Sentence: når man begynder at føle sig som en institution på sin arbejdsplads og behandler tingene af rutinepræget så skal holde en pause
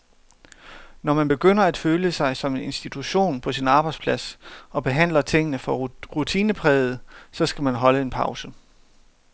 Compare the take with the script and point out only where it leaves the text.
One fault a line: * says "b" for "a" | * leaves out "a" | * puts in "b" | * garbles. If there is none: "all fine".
* says "for" for "af"
* puts in "man"